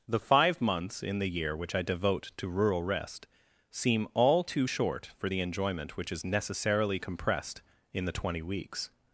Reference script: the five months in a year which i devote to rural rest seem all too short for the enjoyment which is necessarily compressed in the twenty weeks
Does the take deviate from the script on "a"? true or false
true